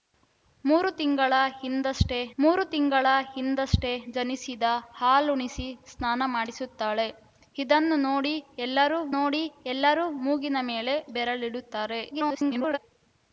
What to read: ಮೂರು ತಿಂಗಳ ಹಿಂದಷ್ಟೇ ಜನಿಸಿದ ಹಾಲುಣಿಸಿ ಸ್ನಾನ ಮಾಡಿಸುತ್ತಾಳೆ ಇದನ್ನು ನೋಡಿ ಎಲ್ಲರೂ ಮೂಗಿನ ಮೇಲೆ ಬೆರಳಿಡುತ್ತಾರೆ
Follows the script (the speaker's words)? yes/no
no